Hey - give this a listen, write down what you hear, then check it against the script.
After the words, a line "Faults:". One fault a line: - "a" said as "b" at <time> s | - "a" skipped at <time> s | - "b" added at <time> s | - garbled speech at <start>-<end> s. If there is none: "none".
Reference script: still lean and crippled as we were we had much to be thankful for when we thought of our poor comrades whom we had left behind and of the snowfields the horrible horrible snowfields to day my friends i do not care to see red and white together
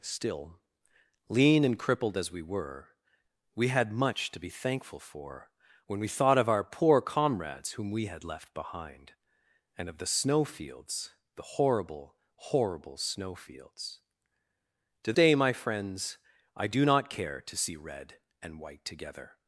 still lean and crippled as we were we had much to be thankful for when we thought of our poor comrades whom we had left behind and of the snowfields the horrible horrible snowfields to day my friends i do not care to see red and white together
Faults:
none